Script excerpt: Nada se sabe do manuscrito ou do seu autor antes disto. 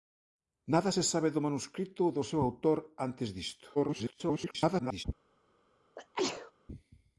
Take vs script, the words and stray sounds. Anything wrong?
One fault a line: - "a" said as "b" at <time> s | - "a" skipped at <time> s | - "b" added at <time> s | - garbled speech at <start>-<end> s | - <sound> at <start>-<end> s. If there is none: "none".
- garbled speech at 3.7-5.0 s
- sneeze at 6.0-6.5 s